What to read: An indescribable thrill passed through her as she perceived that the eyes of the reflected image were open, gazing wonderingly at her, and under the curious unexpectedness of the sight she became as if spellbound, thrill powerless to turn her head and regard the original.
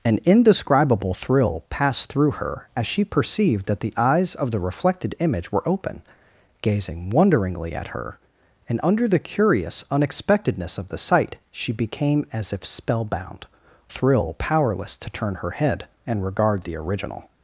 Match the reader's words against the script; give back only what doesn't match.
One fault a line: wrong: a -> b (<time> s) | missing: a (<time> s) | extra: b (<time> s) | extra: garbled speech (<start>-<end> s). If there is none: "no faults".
no faults